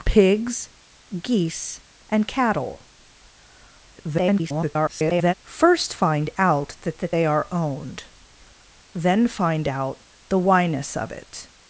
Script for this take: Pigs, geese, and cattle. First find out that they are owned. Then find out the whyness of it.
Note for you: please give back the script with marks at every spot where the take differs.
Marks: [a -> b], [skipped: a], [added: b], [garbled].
Pigs, geese, and cattle. [garbled] First find out that [added: that] they are owned. Then find out the whyness of it.